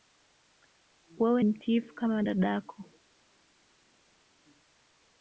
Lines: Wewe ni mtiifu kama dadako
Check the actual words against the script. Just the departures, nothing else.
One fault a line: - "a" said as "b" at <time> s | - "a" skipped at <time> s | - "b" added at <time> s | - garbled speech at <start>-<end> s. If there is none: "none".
- "ni" skipped at 1.4 s